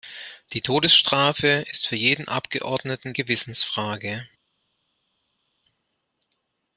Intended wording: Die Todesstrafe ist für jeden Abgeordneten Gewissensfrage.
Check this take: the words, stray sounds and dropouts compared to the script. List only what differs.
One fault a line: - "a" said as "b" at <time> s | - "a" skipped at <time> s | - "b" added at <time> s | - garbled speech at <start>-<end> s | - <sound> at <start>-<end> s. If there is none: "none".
none